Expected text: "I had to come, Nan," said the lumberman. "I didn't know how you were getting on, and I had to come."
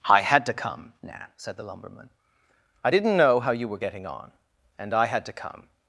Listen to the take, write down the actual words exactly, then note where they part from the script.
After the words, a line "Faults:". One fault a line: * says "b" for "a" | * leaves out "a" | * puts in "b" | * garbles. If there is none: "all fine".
"I had to come, Nan," said the lumberman. "I didn't know how you were getting on, and I had to come."
Faults:
all fine